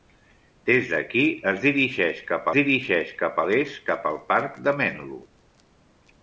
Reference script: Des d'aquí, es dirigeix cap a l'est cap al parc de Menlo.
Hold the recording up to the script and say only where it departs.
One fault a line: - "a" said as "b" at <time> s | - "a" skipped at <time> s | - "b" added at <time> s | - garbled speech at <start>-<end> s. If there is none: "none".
- "dirigeix cap" added at 2.6 s